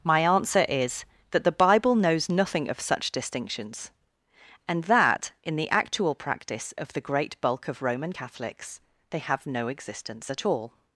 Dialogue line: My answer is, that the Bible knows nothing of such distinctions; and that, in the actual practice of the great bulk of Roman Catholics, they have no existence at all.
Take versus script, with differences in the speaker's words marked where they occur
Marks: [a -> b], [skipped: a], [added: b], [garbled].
My answer is, that the Bible knows nothing of such distinctions; and that, in the actual practice of the great bulk of Roman Catholics, they have no existence at all.